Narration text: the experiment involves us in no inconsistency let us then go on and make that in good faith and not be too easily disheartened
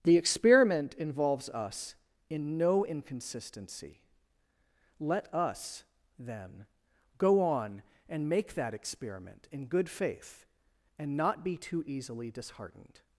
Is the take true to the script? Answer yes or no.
no